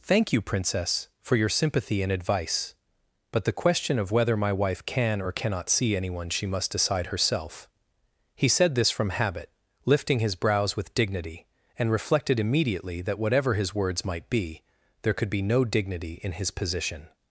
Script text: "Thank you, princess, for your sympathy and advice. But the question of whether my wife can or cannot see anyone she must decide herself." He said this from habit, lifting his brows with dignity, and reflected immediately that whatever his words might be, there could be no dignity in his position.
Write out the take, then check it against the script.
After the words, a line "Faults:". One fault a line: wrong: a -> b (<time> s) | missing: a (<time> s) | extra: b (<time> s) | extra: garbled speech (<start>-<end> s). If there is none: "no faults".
"Thank you, princess, for your sympathy and advice. But the question of whether my wife can or cannot see anyone she must decide herself." He said this from habit, lifting his brows with dignity, and reflected immediately that whatever his words might be, there could be no dignity in his position.
Faults:
no faults